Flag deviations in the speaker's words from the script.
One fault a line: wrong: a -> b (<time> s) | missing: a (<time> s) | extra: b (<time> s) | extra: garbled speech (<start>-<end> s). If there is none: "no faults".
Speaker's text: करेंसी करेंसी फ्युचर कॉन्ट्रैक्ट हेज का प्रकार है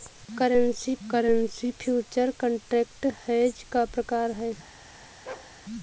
no faults